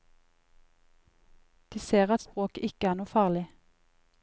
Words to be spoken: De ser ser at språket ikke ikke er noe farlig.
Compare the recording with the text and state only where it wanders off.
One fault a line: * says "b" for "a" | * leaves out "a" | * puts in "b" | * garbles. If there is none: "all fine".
* leaves out "ser"
* leaves out "ikke"